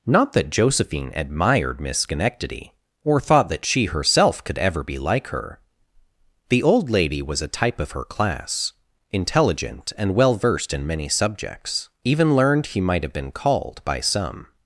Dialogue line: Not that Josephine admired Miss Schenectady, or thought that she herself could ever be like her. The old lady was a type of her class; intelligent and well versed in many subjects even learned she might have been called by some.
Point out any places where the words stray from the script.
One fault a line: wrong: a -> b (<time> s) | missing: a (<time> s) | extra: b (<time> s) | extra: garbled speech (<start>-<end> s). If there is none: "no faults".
wrong: she -> he (12.7 s)